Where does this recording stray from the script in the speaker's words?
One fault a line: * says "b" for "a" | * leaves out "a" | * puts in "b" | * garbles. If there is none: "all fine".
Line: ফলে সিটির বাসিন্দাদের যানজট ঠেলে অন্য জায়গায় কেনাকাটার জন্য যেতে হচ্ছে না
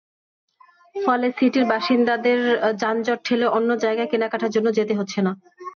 all fine